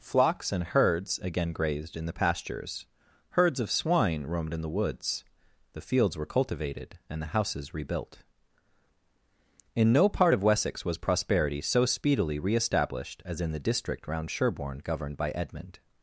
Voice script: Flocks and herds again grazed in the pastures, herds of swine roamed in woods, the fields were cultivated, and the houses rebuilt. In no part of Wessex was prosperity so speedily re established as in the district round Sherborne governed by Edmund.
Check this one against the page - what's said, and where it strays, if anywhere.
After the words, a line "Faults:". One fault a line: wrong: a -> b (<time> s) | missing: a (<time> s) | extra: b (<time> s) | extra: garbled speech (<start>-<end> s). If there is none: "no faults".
Flocks and herds again grazed in the pastures, herds of swine roamed in the woods, the fields were cultivated, and the houses rebuilt. In no part of Wessex was prosperity so speedily re established as in the district round Sherborne governed by Edmund.
Faults:
extra: the (4.6 s)